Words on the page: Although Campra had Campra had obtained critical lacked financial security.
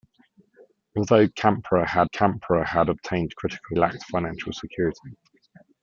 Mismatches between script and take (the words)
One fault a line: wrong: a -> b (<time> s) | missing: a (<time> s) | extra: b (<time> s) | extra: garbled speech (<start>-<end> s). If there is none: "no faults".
no faults